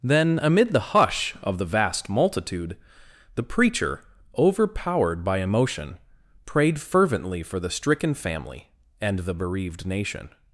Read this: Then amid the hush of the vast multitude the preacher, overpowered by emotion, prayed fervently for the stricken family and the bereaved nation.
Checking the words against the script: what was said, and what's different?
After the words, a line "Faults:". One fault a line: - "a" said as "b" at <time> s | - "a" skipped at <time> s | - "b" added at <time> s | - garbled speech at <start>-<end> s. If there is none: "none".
Then amid the hush of the vast multitude the preacher, overpowered by emotion, prayed fervently for the stricken family and the bereaved nation.
Faults:
none